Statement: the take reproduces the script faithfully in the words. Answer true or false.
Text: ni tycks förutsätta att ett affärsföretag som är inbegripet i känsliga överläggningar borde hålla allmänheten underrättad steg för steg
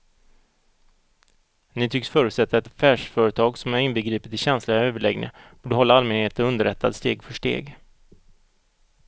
false